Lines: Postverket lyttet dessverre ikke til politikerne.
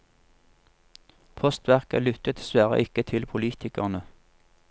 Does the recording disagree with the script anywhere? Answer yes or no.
no